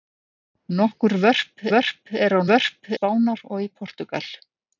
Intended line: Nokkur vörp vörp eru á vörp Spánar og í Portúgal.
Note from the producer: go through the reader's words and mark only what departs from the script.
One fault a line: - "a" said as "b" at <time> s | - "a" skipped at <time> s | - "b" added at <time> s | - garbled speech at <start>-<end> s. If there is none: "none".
none